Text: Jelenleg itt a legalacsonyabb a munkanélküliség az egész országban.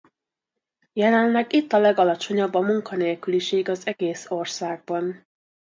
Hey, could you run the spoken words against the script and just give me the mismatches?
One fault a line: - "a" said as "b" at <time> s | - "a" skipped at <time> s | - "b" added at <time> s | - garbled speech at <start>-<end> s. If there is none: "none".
none